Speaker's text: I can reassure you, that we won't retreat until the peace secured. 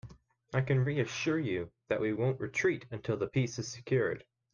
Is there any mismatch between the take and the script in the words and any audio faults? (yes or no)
yes